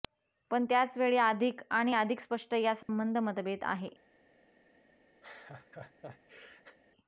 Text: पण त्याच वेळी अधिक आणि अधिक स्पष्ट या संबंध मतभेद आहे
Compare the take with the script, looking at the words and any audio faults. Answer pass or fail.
fail